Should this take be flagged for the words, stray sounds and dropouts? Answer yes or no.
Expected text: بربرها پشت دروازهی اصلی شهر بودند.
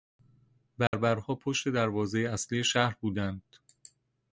yes